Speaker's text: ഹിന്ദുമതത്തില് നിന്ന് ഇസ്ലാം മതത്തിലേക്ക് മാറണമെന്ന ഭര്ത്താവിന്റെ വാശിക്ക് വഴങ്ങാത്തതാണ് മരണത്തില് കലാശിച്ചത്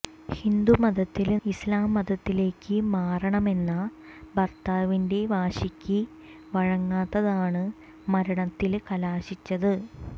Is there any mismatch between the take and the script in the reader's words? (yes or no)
yes